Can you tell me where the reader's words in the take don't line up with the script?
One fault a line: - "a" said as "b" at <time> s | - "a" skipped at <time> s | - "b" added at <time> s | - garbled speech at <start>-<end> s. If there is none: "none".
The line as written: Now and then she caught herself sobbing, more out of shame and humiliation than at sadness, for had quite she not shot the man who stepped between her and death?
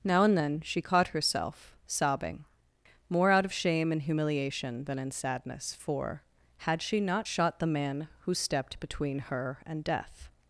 - "at" said as "in" at 5.0 s
- "quite" skipped at 6.8 s